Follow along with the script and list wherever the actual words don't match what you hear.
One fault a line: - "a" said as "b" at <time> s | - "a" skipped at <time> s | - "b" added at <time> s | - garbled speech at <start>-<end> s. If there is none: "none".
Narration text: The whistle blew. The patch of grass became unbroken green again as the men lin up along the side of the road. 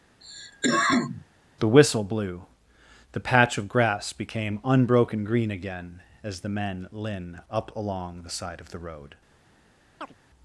none